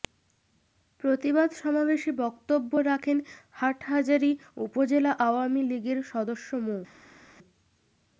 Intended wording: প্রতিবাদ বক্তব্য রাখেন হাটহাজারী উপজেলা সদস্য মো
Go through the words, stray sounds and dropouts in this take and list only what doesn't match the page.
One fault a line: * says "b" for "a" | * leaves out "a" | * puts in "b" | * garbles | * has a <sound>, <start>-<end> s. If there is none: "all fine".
* puts in "সমাবেশে"
* puts in "আওয়ামী লীগের"